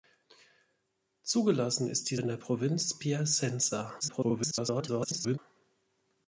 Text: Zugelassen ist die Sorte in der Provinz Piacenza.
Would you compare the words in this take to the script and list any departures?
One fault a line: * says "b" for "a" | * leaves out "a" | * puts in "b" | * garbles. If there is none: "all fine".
* leaves out "Sorte"
* garbles